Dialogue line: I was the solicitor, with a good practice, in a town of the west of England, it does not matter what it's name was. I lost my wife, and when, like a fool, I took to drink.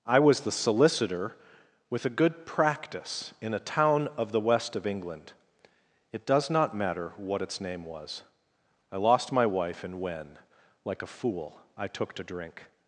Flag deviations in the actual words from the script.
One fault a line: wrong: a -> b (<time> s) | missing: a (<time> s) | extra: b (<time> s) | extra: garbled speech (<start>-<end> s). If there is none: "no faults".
no faults